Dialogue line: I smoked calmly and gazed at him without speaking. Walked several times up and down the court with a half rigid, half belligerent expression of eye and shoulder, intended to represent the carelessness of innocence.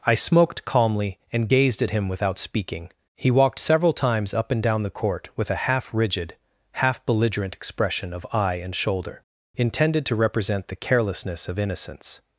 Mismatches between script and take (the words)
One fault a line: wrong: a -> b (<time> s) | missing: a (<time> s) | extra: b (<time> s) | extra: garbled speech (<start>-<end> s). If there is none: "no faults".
extra: He (3.2 s)